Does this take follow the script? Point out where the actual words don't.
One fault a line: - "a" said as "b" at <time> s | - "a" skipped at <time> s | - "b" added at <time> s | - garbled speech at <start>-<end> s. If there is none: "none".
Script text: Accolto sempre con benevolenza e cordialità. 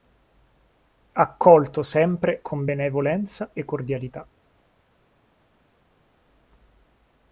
none